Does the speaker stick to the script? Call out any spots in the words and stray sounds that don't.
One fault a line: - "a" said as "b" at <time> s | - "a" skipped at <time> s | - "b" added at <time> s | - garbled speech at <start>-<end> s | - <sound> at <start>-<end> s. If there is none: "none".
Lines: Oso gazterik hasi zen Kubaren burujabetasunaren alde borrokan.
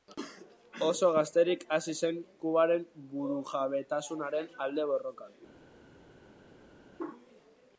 none